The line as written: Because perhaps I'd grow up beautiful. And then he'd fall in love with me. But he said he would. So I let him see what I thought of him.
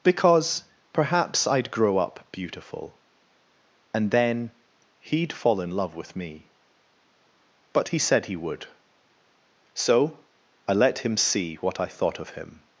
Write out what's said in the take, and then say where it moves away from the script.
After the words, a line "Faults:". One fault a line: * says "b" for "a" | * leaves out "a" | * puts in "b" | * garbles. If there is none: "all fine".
Because perhaps I'd grow up beautiful. And then he'd fall in love with me. But he said he would. So I let him see what I thought of him.
Faults:
all fine